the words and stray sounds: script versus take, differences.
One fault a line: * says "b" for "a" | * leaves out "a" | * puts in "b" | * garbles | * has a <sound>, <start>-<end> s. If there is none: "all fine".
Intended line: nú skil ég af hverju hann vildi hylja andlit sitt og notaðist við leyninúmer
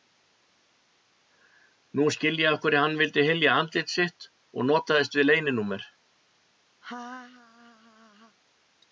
* has a laugh, 6.8-8.4 s